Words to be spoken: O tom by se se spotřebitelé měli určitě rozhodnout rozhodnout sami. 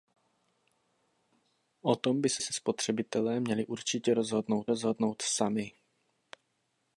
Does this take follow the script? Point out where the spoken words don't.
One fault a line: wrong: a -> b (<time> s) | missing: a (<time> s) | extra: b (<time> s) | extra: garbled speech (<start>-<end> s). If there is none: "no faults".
no faults